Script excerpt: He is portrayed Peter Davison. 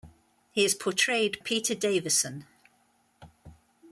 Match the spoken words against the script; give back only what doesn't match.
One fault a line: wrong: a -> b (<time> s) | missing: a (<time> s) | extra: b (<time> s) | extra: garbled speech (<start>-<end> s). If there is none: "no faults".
no faults